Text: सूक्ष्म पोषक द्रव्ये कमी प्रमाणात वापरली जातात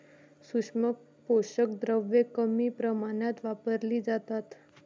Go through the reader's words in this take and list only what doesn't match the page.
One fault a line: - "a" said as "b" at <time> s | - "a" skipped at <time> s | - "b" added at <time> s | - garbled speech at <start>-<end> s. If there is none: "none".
none